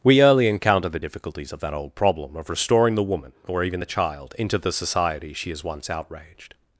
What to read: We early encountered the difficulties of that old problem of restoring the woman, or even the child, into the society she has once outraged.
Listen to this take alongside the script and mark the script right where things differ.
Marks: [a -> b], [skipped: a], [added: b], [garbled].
We early [encountered -> encounter] the difficulties of that old problem of restoring the woman, or even the child, into the society she has once outraged.